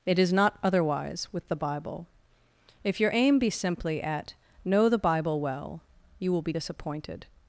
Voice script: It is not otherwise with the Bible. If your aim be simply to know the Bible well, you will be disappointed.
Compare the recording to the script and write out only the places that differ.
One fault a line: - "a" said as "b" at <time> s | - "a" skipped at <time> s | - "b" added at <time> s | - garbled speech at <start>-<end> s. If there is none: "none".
- "to" said as "at" at 4.0 s